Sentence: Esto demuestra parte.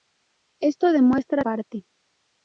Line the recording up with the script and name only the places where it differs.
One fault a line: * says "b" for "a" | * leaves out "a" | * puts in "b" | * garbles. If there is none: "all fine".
all fine